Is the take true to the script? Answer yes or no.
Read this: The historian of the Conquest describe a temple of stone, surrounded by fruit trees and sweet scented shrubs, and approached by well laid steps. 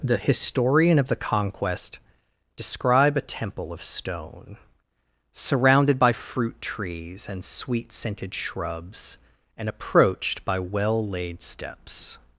yes